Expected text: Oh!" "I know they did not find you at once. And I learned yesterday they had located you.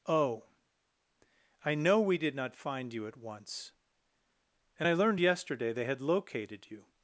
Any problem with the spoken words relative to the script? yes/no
yes